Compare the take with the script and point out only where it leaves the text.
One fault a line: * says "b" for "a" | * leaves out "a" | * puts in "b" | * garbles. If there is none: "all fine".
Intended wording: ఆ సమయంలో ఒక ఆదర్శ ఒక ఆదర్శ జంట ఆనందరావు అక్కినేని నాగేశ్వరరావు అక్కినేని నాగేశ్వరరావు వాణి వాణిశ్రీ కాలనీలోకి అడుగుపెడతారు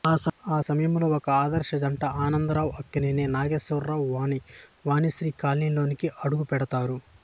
* leaves out "ఒక ఆదర్శ"
* leaves out "అక్కినేని నాగేశ్వరరావు"